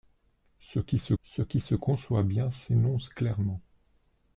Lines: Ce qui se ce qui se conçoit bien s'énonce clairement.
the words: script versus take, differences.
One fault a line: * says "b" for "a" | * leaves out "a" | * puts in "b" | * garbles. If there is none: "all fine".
all fine